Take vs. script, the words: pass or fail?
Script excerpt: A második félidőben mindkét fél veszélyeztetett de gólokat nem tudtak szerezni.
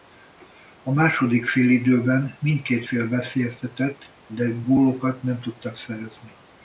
pass